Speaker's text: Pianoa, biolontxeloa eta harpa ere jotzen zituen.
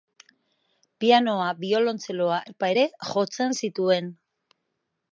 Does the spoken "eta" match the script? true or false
false